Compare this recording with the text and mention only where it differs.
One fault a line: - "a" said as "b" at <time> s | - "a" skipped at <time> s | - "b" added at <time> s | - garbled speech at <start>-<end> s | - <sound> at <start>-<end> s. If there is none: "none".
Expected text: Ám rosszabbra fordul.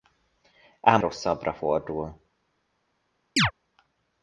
- chirp at 3.4-3.5 s